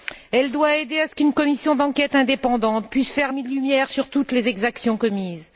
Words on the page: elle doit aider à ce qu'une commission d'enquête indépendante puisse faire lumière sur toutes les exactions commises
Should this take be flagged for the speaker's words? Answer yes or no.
no